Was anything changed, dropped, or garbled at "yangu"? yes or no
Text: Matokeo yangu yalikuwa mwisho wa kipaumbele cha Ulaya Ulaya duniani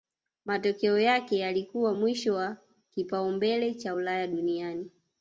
yes